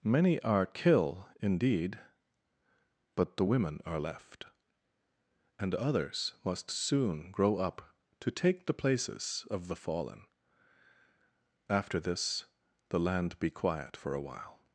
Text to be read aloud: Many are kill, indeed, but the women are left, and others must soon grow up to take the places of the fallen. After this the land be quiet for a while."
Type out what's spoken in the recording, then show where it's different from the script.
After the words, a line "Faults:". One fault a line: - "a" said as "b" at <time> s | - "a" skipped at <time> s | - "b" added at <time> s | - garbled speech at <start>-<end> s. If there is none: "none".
Many are kill, indeed, but the women are left, and others must soon grow up to take the places of the fallen. After this the land be quiet for a while."
Faults:
none